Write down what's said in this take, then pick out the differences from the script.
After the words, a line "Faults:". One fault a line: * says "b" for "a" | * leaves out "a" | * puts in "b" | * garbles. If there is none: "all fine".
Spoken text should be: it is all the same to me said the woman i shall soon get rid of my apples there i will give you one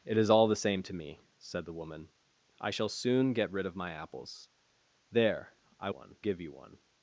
it is all the same to me said the woman i shall soon get rid of my apples there i one give you one
Faults:
* says "one" for "will"